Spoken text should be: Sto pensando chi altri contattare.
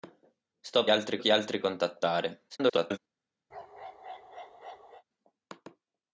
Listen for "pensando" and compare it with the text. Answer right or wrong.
wrong